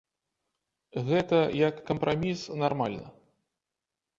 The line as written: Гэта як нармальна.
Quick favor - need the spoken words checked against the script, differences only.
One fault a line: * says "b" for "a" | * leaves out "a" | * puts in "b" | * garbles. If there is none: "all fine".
* puts in "кампраміс"